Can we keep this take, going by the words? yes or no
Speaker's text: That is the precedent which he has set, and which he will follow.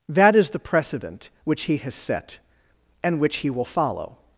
yes